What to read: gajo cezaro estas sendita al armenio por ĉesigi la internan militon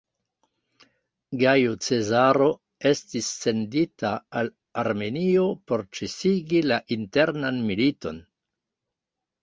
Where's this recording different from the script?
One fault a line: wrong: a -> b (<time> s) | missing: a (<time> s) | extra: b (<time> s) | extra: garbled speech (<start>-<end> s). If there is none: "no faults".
wrong: estas -> estis (2.9 s)